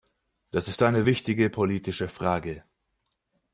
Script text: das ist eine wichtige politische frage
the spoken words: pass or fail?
pass